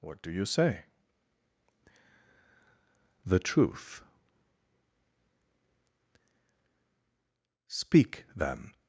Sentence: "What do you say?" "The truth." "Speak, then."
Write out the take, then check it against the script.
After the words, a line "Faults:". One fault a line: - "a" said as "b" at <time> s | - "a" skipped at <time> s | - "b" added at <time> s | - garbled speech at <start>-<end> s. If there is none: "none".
"What do you say?" "The truth." "Speak, then."
Faults:
none